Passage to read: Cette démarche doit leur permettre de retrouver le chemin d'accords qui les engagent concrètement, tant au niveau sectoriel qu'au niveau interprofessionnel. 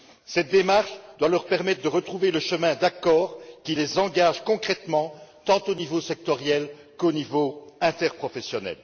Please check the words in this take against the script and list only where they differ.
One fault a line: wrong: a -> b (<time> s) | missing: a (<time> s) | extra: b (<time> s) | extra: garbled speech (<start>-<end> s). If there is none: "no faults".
no faults